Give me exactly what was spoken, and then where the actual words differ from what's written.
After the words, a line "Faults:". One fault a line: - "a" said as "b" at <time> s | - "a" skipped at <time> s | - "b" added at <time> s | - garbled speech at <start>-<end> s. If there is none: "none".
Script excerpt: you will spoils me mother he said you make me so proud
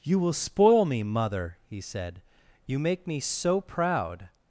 you will spoil me mother he said you make me so proud
Faults:
- "spoils" said as "spoil" at 0.3 s